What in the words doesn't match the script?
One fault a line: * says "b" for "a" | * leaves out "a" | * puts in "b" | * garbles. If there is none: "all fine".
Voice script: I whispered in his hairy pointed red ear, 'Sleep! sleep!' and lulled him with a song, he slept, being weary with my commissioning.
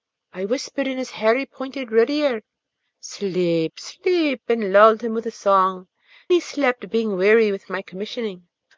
all fine